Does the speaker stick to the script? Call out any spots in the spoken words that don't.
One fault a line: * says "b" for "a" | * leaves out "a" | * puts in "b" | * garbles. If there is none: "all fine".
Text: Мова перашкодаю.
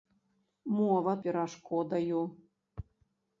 all fine